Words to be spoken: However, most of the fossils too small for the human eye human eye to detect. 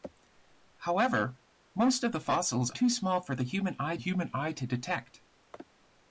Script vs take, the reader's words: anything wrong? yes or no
no